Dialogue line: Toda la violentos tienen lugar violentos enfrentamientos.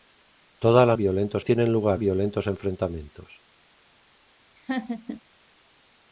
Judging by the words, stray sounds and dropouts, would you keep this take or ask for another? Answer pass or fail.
fail